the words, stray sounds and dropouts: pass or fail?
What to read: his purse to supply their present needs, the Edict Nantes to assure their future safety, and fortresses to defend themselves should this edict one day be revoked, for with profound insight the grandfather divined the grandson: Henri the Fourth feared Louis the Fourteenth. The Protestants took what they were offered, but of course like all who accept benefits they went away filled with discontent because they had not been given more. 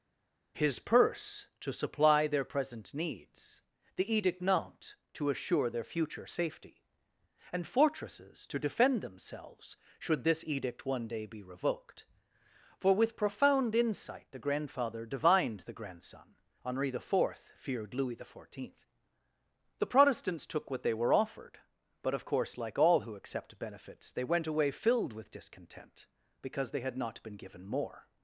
pass